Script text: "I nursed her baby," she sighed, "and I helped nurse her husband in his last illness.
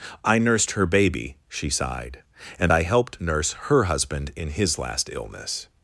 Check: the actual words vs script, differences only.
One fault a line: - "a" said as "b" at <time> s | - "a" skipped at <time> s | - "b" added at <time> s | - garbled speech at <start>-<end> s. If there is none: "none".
none